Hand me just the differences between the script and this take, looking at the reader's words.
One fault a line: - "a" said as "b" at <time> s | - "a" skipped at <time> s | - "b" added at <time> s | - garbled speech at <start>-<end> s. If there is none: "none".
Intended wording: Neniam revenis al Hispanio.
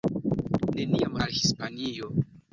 - "revenis" skipped at 1.2 s